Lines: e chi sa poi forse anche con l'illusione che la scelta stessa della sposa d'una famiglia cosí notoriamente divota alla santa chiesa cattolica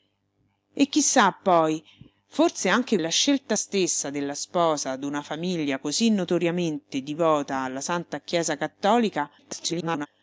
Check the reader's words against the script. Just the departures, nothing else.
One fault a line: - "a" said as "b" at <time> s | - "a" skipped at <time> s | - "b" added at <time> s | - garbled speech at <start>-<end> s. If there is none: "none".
- "con l'illusione che" skipped at 3.0 s
- garbled speech at 9.4-10.1 s